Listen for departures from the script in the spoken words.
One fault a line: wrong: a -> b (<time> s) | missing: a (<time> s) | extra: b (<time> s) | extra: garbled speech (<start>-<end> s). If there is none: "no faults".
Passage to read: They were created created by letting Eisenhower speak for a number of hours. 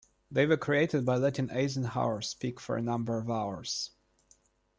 missing: created (1.1 s)